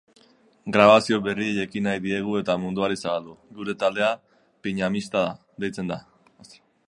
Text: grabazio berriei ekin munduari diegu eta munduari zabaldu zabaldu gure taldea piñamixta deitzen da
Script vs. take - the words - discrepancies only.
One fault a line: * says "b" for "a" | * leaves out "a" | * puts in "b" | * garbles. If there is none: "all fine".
* says "nahi" for "munduari"
* leaves out "zabaldu"